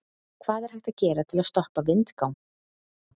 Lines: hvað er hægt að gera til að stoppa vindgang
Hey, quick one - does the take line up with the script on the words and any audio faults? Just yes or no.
yes